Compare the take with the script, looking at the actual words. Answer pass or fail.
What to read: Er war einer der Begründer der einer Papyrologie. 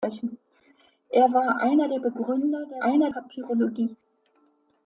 pass